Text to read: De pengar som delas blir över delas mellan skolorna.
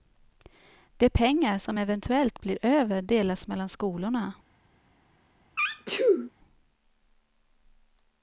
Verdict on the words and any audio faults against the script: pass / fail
fail